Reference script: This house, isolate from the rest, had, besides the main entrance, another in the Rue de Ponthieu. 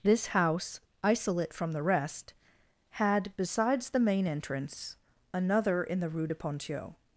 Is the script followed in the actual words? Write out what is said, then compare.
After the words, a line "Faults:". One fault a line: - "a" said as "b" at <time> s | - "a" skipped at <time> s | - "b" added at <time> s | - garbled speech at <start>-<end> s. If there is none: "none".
This house, isolate from the rest, had, besides the main entrance, another in the Rue de Ponthieu.
Faults:
none